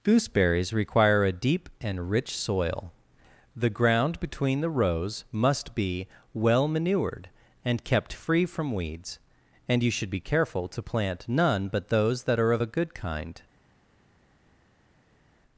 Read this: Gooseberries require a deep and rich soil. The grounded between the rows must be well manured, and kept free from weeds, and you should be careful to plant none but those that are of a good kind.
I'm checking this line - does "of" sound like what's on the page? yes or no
yes